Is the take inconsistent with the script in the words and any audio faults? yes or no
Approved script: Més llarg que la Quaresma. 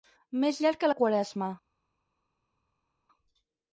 no